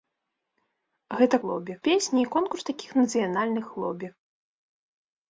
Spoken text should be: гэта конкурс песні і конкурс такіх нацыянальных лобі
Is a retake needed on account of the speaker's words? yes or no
yes